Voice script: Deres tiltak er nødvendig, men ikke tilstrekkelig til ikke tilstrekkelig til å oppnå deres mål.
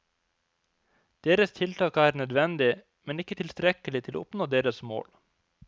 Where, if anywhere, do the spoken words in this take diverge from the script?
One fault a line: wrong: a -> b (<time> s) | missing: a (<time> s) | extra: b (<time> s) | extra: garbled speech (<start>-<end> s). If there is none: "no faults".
missing: ikke tilstrekkelig til (4.2 s)